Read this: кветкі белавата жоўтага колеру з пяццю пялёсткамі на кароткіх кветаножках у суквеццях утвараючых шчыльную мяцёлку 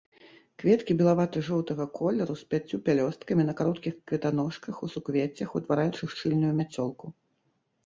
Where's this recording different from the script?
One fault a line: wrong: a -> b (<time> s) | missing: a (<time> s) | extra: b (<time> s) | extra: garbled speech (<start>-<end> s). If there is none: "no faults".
no faults